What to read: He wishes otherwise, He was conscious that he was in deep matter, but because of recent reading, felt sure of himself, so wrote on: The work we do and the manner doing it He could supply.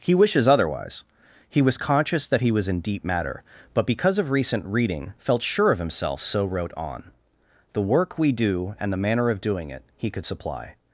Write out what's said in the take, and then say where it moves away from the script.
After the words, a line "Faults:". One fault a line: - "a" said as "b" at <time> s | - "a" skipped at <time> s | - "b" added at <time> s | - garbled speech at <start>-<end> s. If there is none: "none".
He wishes otherwise, He was conscious that he was in deep matter, but because of recent reading, felt sure of himself, so wrote on: The work we do and the manner of doing it He could supply.
Faults:
- "of" added at 9.3 s